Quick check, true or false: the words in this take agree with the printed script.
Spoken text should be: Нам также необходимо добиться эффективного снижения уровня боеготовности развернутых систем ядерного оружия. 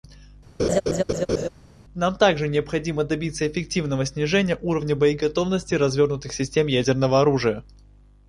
true